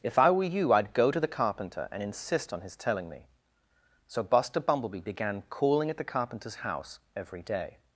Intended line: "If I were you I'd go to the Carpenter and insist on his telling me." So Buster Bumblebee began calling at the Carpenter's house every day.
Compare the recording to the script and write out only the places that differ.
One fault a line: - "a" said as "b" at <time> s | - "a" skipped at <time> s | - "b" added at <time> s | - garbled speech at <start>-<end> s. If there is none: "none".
none